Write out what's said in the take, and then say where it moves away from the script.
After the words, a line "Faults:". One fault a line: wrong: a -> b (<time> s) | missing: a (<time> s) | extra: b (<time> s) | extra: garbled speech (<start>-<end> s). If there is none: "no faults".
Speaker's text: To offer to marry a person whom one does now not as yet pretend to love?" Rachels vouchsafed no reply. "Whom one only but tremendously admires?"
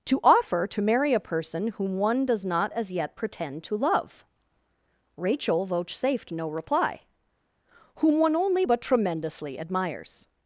To offer to marry a person whom one does not as yet pretend to love?" Rachel vouchsafed no reply. "Whom one only but tremendously admires?"
Faults:
missing: now (2.5 s)
wrong: Rachels -> Rachel (5.2 s)